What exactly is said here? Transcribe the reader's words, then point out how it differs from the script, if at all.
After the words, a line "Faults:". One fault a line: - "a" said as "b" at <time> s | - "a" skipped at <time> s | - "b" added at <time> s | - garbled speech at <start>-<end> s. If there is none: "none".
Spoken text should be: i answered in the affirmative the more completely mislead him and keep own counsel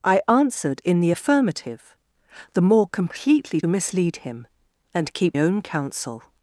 i answered in the affirmative the more completely mislead him and keep own counsel
Faults:
none